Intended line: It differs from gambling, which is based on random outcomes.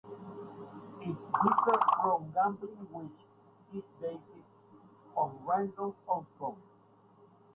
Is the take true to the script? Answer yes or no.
yes